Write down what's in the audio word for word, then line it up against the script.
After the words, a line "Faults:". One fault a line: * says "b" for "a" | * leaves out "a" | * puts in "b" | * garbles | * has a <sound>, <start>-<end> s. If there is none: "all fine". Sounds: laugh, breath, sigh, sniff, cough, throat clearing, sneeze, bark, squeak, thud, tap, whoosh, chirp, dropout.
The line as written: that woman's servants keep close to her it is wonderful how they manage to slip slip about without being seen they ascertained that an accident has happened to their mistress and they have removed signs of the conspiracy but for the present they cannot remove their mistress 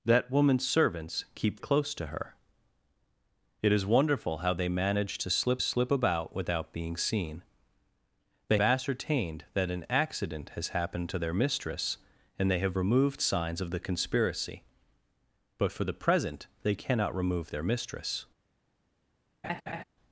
that woman's servants keep close to her it is wonderful how they manage to slip slip about without being seen they ascertained that an accident has happened to their mistress and they have removed signs of the conspiracy but for the present they cannot remove their mistress
Faults:
* has a laugh, 19.4-19.8 s